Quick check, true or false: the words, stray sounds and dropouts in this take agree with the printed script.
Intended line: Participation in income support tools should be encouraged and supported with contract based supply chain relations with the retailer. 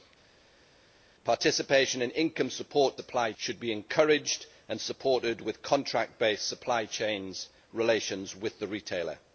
false